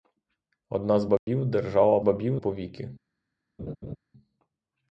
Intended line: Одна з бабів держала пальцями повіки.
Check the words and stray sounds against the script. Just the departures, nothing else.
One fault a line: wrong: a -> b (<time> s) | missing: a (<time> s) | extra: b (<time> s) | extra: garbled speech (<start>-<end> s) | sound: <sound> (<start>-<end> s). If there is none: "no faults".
sound: dropout (1.2-1.3 s)
wrong: пальцями -> бабів (2.0 s)
sound: laugh (3.6-4.0 s)